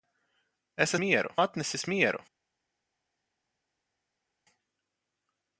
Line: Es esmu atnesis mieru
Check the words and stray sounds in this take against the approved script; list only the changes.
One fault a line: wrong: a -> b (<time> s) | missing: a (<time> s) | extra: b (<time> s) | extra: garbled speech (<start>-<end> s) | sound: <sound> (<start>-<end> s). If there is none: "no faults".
wrong: esmu -> mieru (1.0 s)